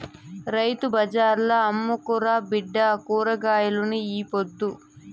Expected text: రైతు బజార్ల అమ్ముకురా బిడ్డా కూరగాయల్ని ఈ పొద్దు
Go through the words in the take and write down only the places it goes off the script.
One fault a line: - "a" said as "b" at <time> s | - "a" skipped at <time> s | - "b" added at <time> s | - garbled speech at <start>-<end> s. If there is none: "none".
none